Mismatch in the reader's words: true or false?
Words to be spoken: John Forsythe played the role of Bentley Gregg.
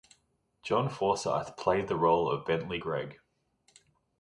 false